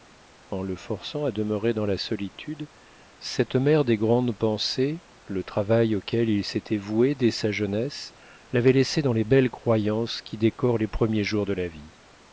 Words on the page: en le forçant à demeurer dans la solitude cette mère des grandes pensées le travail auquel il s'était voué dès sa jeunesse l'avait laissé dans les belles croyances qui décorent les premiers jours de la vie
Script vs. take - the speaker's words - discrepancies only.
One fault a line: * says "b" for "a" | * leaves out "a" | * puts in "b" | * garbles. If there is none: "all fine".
all fine